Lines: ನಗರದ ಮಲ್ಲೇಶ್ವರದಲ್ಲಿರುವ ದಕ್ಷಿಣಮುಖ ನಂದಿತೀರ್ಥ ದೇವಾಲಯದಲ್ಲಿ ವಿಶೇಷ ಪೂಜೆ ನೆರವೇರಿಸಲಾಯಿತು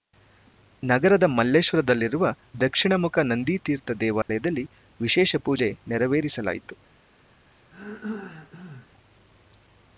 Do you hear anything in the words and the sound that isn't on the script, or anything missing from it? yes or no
yes